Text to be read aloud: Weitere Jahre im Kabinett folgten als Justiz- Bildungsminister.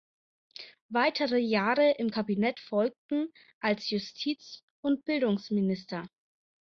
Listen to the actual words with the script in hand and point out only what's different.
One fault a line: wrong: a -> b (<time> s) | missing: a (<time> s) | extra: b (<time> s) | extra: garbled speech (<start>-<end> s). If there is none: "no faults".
extra: und (4.8 s)